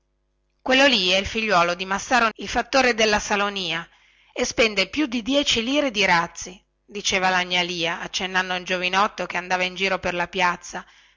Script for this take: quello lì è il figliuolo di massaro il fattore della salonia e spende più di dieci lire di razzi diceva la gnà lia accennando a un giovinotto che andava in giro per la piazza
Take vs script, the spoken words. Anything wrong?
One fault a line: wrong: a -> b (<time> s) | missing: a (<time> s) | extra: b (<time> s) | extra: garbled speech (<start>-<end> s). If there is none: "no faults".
no faults